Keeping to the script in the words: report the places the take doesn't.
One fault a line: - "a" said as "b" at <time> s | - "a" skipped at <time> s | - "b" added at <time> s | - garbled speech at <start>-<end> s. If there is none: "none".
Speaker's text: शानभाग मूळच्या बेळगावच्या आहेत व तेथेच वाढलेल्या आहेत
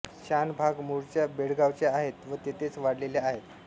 none